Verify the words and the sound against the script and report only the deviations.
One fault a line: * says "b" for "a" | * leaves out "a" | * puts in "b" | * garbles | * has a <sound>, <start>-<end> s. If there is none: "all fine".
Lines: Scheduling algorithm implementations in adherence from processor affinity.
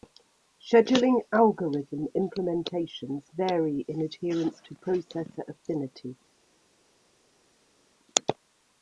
* puts in "vary"
* says "to" for "from"